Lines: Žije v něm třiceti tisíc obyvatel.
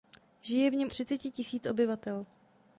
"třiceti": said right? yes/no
yes